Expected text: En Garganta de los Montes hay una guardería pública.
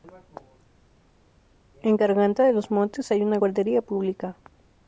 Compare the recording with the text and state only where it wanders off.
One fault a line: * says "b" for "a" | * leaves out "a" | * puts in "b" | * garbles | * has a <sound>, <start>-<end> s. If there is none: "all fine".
all fine